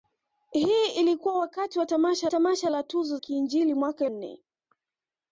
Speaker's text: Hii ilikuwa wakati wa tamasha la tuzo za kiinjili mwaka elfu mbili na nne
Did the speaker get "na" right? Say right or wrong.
wrong